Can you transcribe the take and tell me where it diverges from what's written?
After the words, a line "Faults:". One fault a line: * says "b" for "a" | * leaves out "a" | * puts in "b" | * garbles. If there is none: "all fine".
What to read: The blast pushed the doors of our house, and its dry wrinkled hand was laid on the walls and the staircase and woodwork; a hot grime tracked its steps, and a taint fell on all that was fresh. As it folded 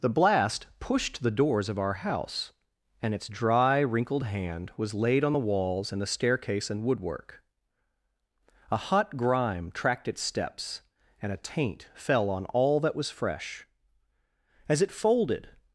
The blast pushed the doors of our house, and its dry wrinkled hand was laid on the walls and the staircase and woodwork; a hot grime tracked its steps, and a taint fell on all that was fresh. As it folded
Faults:
all fine